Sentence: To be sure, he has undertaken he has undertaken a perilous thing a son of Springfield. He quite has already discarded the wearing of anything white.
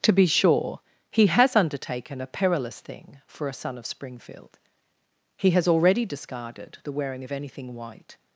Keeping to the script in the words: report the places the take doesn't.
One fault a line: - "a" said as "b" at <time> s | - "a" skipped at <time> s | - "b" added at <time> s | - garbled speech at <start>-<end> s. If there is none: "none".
- "he has undertaken" skipped at 2.2 s
- "for" added at 3.3 s
- "quite" skipped at 5.5 s